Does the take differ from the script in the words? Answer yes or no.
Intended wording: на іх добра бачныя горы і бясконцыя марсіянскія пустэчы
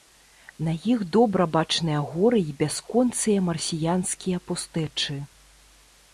no